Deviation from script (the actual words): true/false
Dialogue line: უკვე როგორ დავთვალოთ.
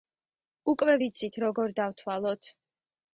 true